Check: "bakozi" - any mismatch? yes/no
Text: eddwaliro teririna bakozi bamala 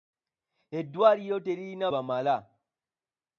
yes